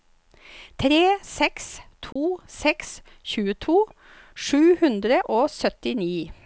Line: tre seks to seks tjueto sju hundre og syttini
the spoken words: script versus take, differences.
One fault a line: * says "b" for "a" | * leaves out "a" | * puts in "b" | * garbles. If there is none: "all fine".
all fine